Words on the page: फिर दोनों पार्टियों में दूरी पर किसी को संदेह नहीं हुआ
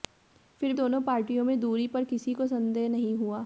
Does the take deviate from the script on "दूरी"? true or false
false